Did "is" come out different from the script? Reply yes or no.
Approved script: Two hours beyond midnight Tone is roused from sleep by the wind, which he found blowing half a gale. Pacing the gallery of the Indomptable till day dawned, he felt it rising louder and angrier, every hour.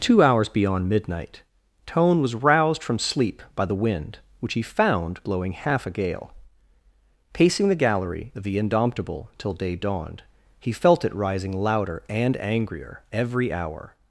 yes